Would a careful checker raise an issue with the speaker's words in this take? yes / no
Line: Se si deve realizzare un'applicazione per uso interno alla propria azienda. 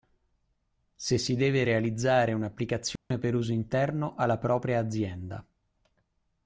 no